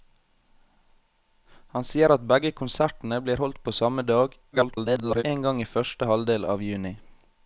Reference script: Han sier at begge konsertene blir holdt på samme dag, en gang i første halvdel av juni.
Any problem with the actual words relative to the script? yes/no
yes